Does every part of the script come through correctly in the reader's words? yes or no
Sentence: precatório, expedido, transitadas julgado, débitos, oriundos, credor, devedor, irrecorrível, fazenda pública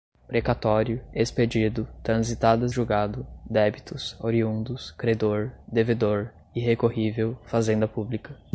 yes